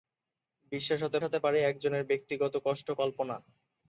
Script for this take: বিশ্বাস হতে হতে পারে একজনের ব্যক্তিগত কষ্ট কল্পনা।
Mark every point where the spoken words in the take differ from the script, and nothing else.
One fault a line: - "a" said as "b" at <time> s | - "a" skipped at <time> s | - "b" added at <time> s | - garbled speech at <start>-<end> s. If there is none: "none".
none